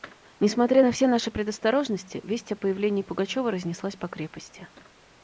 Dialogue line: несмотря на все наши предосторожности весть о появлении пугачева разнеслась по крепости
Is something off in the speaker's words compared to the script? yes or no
no